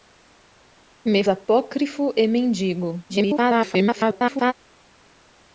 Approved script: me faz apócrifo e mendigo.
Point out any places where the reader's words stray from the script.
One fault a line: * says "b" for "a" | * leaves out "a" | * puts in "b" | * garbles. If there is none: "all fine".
* leaves out "faz"
* garbles